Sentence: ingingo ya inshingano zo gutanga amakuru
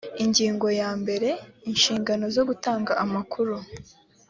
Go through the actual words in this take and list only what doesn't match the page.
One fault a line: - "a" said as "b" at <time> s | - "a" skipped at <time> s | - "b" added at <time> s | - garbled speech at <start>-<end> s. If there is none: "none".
- "mbere" added at 1.0 s